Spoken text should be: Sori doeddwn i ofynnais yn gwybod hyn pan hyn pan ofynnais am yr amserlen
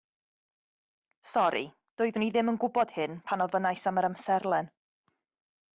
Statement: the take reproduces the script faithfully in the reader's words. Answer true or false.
false